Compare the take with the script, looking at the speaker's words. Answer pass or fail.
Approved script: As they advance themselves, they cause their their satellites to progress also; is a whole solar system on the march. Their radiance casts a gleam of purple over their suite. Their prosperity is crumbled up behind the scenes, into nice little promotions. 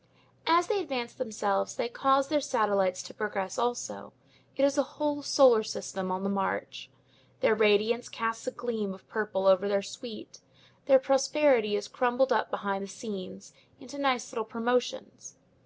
fail